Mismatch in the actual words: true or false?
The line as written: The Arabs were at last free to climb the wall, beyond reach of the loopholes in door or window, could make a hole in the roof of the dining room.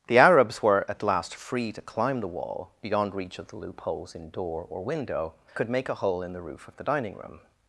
false